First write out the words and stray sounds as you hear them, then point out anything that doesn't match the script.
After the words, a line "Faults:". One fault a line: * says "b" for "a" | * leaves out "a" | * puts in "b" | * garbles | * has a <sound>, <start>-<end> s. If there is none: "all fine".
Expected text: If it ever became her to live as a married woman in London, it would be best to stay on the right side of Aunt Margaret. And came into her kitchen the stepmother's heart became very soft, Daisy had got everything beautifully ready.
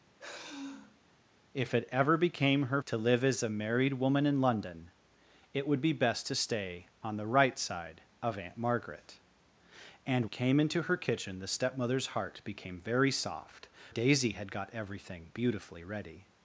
If it ever became her to live as a married woman in London, it would be best to stay on the right side of Aunt Margaret. And came into her kitchen the stepmother's heart became very soft, Daisy had got everything beautifully ready.
Faults:
* has a sigh, 0.2-1.0 s